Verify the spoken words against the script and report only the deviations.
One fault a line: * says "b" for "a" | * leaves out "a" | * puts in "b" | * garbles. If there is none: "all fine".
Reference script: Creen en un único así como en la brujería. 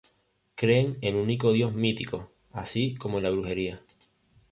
* puts in "dios mítico"